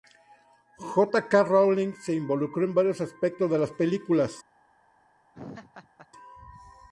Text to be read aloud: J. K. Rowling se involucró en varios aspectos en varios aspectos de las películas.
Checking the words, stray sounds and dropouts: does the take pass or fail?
fail